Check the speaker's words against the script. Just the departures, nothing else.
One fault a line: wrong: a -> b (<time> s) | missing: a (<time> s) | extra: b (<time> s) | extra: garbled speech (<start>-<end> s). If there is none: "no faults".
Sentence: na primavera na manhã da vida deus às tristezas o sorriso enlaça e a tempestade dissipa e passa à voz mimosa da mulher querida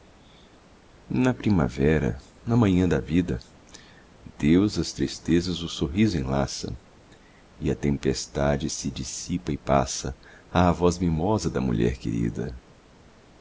extra: se (8.7 s)